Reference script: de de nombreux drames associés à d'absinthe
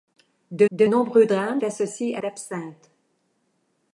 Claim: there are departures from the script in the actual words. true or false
false